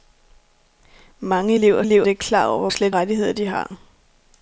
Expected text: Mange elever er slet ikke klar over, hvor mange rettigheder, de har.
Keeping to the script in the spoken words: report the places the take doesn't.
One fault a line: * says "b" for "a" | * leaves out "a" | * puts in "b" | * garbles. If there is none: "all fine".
* says "elever" for "slet"
* says "slet" for "mange"